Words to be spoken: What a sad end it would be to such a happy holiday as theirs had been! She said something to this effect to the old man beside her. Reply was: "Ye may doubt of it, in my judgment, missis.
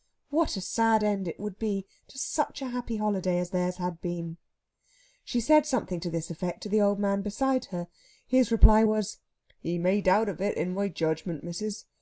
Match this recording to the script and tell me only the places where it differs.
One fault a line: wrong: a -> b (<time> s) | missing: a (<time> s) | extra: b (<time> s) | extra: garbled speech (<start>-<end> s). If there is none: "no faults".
extra: His (8.2 s)